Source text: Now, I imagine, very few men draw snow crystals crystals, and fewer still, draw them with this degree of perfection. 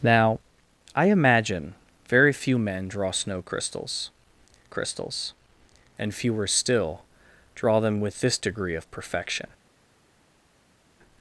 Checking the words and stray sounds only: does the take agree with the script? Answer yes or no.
yes